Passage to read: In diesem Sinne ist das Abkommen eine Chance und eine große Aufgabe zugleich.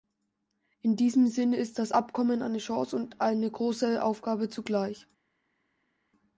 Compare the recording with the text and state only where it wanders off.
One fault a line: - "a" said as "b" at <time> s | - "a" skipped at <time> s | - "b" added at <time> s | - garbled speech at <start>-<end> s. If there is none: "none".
none